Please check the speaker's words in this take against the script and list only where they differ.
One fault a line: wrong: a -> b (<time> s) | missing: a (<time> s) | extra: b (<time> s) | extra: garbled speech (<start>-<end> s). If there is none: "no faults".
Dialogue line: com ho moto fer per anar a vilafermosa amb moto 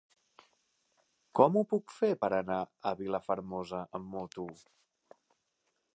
wrong: moto -> puc (1.7 s)